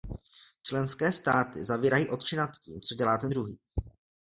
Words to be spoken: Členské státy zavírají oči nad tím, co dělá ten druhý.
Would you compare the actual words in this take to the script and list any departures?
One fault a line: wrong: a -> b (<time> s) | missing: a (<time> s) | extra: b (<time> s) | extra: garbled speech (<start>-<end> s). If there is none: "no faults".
no faults